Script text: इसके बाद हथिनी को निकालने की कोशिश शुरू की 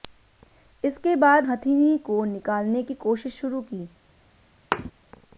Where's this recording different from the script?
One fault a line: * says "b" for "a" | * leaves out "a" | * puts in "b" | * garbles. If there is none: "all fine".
all fine